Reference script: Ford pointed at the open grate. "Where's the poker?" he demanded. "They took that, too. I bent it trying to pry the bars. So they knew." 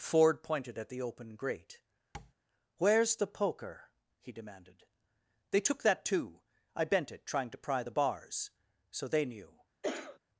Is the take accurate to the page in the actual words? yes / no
yes